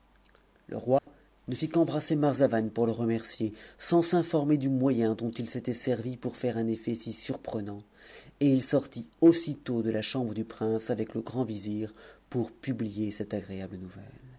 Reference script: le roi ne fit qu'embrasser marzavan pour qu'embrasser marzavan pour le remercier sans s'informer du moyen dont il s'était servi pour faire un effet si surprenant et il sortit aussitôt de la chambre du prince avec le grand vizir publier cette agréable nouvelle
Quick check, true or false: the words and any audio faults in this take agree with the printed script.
false